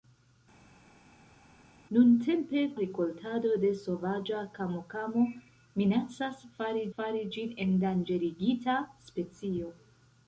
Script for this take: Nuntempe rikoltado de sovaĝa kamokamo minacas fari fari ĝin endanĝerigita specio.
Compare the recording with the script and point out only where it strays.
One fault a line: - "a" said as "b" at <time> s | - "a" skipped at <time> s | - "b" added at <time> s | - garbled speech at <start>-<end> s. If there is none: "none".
none